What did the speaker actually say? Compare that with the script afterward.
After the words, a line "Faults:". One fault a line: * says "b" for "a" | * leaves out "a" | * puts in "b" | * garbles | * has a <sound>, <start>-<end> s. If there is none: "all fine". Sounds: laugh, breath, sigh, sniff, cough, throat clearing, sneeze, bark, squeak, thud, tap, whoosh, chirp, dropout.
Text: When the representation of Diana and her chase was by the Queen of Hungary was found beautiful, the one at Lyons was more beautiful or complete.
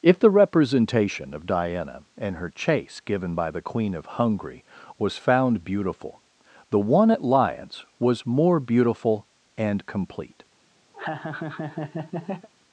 If the representation of Diana and her chase given by the Queen of Hungary was found beautiful, the one at Lyons was more beautiful and complete.
Faults:
* says "If" for "When"
* says "given" for "was"
* says "and" for "or"
* has a laugh, 10.9-12.5 s